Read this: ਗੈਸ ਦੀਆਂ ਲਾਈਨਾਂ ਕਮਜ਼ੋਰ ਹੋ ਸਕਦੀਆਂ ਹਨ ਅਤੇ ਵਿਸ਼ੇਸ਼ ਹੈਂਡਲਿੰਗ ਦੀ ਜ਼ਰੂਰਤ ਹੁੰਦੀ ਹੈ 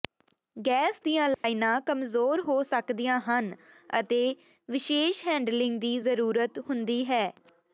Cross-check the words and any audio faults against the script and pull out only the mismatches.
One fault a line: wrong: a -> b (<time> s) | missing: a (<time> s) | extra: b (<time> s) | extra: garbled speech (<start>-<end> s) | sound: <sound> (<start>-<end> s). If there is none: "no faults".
sound: dropout (1.3-1.4 s)